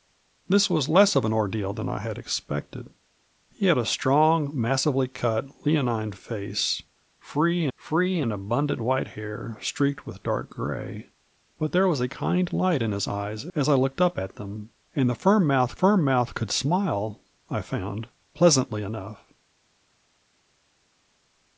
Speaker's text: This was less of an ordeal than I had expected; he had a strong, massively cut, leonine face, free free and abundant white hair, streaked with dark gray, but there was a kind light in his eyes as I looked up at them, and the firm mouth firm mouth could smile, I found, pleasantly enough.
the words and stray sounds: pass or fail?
pass